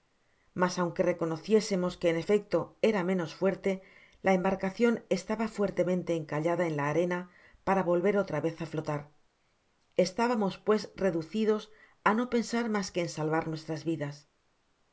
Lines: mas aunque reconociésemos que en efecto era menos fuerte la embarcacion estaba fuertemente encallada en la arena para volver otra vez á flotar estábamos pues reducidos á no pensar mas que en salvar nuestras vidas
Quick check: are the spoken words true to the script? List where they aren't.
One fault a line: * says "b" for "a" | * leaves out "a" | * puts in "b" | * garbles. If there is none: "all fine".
all fine